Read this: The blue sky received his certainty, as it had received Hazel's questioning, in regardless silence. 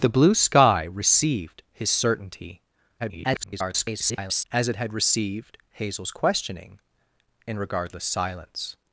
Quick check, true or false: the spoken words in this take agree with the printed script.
false